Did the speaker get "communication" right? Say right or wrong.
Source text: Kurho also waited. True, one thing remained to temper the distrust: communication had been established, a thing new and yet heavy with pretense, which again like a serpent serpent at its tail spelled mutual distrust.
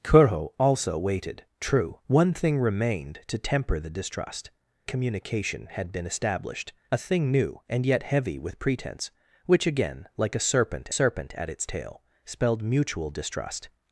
right